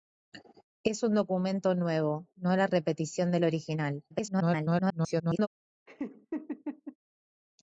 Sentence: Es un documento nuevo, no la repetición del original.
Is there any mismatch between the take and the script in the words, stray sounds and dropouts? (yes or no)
yes